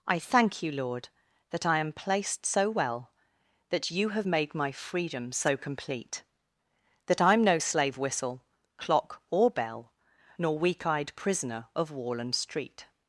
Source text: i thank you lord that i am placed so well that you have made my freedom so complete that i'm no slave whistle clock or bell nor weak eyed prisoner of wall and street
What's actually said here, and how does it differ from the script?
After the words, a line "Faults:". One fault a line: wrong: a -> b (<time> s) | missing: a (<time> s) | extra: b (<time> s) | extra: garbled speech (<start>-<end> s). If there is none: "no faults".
i thank you lord that i am placed so well that you have made my freedom so complete that i'm no slave whistle clock or bell nor weak eyed prisoner of wall and street
Faults:
no faults